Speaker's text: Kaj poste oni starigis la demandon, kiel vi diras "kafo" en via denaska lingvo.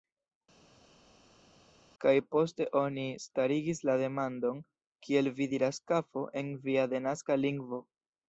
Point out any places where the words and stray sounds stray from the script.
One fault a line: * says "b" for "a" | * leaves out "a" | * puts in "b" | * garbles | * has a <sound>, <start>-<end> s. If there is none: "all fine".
all fine